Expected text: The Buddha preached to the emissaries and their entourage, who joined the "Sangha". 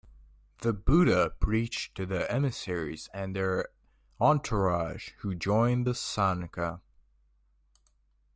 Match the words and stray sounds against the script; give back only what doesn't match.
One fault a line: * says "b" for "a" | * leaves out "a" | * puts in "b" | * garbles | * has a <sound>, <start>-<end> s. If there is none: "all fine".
all fine